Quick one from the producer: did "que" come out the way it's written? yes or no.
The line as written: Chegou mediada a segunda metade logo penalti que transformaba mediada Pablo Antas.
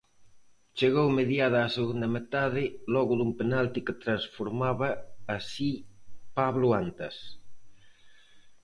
yes